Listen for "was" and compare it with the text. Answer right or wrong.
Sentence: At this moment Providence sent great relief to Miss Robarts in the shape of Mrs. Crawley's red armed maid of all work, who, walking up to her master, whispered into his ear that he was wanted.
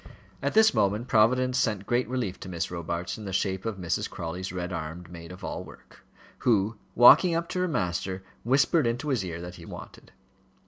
wrong